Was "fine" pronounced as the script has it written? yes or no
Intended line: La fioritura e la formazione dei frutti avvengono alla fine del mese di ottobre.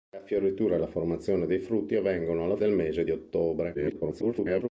no